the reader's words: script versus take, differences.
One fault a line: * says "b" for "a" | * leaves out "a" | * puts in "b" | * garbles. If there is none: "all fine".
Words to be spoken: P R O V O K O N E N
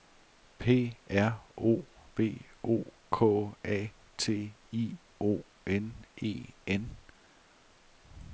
* puts in "A T I"